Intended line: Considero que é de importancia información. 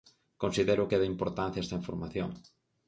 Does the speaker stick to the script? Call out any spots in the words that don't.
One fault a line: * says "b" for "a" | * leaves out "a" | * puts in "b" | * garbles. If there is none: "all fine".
* puts in "esta"